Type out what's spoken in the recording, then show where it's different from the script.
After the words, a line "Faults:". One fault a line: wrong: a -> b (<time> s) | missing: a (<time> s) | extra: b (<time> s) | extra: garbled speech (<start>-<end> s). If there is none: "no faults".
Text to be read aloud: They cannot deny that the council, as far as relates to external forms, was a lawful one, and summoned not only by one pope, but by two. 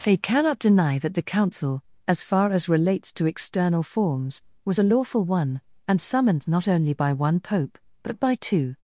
They cannot deny that the council, as far as relates to external forms, was a lawful one, and summoned not only by one pope, but by two.
Faults:
no faults